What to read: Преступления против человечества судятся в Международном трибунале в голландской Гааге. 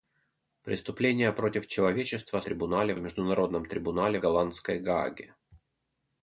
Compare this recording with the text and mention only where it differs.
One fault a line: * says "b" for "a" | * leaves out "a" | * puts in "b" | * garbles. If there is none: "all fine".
* says "трибунале" for "судятся"
* leaves out "в"